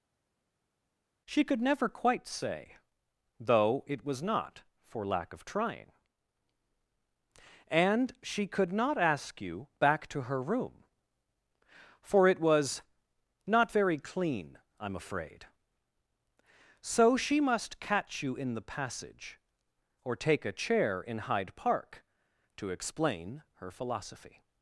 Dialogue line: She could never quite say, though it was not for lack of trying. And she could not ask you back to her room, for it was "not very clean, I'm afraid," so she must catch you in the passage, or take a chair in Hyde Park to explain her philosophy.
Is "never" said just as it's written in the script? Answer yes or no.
yes